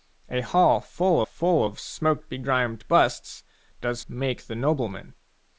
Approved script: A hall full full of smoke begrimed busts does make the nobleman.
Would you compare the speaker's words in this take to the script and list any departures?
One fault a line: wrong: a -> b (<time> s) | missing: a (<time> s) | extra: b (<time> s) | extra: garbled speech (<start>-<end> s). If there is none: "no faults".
no faults